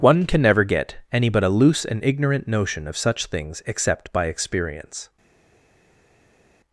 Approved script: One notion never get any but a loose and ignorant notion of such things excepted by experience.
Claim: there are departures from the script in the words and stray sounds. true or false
true